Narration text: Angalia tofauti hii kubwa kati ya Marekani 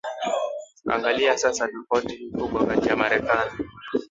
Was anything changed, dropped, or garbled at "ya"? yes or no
no